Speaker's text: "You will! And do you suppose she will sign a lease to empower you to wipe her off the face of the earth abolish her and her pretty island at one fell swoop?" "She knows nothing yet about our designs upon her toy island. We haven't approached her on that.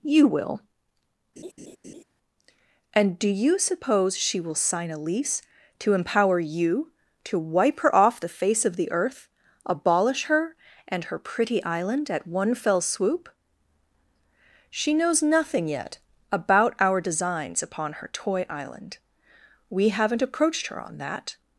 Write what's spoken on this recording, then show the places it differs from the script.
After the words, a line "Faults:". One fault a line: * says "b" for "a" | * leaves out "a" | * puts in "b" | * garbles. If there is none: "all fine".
"You will! And do you suppose she will sign a lease to empower you to wipe her off the face of the earth abolish her and her pretty island at one fell swoop?" "She knows nothing yet about our designs upon her toy island. We haven't approached her on that.
Faults:
all fine